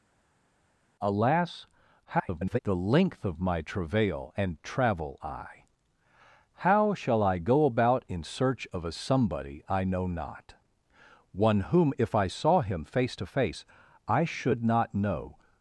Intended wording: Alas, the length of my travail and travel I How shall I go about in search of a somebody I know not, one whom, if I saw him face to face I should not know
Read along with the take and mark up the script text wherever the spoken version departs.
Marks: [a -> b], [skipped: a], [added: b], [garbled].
Alas, [garbled] the length of my travail and travel I How shall I go about in search of a somebody I know not, one whom, if I saw him face to face I should not know